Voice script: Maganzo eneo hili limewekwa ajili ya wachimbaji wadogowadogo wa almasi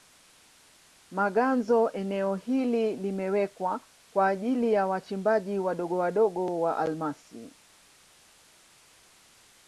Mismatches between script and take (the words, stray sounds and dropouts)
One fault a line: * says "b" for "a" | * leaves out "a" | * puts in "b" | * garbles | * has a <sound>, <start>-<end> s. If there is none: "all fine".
* puts in "kwa"